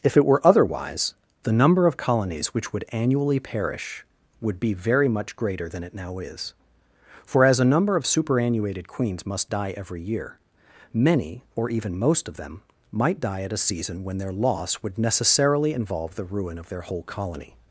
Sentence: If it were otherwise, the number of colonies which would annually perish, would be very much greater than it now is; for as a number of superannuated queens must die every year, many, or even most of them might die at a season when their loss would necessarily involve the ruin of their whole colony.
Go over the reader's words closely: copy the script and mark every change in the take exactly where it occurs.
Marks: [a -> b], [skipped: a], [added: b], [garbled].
If it were otherwise, the number of colonies which would annually perish, would be very much greater than it now is; for as a number of superannuated queens must die every year, many, or even most of them might die at a season when their loss would necessarily involve the ruin of their whole colony.